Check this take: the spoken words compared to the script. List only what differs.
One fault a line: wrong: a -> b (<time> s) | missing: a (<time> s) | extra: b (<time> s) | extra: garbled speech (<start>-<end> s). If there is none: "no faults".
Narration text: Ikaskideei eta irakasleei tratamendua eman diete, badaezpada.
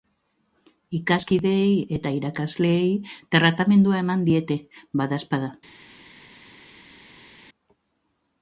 no faults